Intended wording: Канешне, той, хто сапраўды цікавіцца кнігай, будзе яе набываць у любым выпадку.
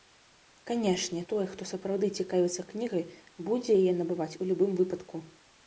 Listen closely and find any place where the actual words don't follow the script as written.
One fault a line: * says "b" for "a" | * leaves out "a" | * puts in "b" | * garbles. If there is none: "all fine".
all fine